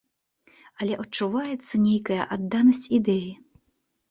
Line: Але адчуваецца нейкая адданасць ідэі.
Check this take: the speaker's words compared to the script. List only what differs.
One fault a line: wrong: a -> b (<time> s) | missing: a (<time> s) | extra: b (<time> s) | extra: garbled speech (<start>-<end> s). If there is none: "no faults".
no faults